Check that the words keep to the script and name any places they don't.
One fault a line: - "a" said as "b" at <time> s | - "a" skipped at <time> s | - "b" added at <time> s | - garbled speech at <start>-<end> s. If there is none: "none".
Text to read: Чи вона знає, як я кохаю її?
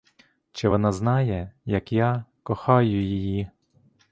none